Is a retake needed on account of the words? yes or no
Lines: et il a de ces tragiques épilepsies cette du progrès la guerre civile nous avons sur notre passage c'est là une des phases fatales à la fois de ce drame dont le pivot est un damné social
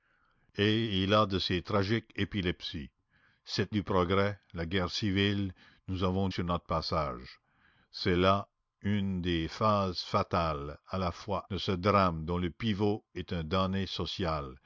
no